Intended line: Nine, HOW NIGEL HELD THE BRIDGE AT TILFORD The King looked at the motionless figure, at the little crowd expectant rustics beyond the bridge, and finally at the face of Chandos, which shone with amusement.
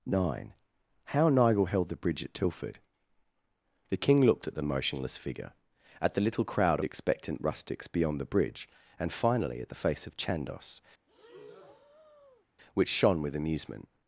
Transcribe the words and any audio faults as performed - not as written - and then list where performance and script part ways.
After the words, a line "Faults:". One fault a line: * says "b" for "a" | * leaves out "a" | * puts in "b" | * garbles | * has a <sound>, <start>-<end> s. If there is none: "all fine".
Nine, HOW NIGEL HELD THE BRIDGE AT TILFORD The King looked at the motionless figure, at the little crowd expectant rustics beyond the bridge, and finally at the face of Chandos, which shone with amusement.
Faults:
* has a breath, 11.1-12.5 s